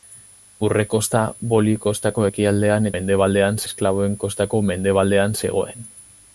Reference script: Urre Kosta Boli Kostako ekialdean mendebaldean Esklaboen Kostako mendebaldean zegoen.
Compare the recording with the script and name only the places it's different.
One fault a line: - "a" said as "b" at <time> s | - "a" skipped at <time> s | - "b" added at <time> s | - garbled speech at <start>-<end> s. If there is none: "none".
none